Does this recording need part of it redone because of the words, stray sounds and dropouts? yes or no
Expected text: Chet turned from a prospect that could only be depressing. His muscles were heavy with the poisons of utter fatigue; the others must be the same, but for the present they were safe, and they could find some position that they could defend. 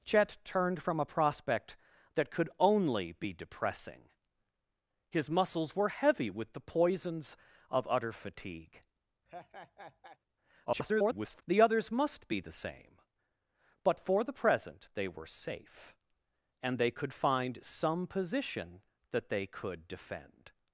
yes